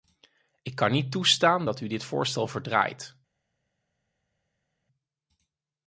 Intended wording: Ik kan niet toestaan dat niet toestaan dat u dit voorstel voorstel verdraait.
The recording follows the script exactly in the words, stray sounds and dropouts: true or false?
false